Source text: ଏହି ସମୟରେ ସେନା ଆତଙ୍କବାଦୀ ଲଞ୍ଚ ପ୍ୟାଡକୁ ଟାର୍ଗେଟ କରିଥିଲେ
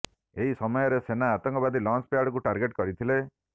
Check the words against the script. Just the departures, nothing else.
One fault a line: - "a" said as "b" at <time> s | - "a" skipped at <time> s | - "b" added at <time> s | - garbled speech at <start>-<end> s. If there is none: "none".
none